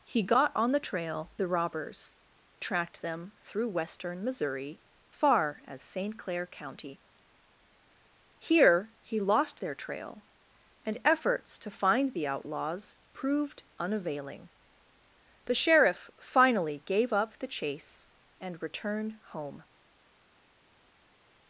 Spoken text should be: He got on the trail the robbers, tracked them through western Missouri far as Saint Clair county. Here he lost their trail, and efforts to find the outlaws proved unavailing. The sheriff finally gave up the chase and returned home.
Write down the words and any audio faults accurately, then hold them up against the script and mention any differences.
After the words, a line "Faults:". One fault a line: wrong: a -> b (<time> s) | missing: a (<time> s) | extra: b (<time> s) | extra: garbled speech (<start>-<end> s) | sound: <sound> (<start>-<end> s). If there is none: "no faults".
He got on the trail the robbers, tracked them through western Missouri far as Saint Clair county. Here he lost their trail, and efforts to find the outlaws proved unavailing. The sheriff finally gave up the chase and returned home.
Faults:
no faults